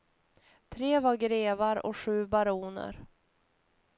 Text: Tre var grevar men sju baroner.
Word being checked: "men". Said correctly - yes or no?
no